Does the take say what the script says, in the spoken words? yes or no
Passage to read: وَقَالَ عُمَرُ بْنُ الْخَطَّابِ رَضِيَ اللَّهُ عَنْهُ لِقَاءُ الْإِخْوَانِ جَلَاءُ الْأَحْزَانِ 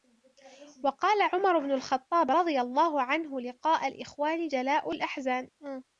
yes